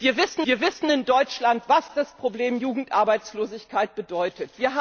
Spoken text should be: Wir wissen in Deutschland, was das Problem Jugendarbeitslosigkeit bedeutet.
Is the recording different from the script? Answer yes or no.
yes